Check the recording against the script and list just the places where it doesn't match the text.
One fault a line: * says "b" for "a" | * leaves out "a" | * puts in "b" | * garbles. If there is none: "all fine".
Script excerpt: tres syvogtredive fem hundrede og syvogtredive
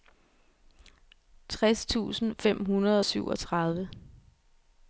* says "tusind" for "syvogtredive"